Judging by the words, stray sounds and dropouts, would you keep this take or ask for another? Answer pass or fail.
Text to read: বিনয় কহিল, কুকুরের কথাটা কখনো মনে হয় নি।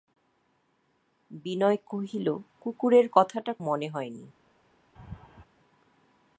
fail